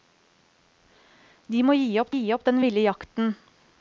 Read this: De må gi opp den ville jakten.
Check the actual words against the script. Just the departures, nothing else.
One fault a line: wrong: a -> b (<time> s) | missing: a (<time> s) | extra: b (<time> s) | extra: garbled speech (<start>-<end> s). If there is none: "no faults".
extra: gi opp (2.1 s)